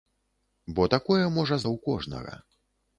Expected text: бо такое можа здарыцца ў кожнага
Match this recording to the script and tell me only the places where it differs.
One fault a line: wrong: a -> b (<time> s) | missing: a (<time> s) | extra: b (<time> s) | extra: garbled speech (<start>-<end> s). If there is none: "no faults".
missing: здарыцца (1.6 s)